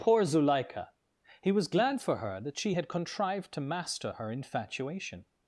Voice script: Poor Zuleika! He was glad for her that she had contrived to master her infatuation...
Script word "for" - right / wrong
right